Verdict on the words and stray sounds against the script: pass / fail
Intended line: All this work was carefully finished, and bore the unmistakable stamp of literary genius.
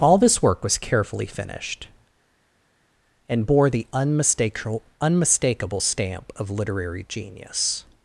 fail